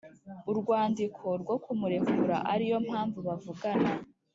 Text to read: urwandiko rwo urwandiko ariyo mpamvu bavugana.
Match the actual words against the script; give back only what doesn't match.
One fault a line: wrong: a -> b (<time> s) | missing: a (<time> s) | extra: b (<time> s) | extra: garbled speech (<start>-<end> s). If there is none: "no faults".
wrong: urwandiko -> kumurekura (1.6 s)